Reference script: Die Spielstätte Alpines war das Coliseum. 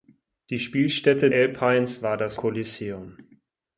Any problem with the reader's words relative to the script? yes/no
no